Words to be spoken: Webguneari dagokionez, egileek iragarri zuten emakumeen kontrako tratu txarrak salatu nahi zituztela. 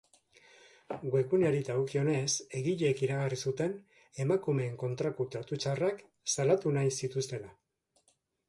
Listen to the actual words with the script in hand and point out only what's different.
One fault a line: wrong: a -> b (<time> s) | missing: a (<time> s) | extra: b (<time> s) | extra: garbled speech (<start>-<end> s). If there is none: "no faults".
no faults